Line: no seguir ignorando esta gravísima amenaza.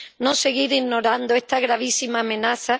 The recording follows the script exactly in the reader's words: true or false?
true